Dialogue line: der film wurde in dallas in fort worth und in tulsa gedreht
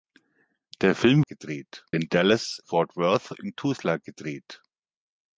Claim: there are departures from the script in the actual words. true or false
true